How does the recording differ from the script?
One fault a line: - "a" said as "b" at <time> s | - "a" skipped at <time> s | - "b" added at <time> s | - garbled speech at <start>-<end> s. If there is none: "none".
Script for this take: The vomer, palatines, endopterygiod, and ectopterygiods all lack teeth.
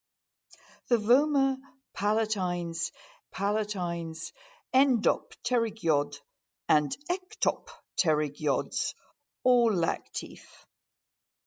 - "palatines" added at 3.3 s